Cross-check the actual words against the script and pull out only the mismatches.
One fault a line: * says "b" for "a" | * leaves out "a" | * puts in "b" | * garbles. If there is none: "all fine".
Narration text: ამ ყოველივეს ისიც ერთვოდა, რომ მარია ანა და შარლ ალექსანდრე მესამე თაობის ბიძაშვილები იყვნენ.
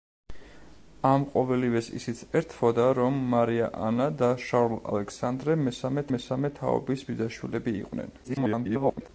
* puts in "მესამე"
* garbles